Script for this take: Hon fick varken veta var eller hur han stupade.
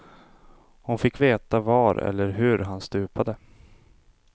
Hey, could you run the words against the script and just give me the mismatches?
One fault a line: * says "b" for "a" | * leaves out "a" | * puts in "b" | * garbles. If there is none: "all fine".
* leaves out "varken"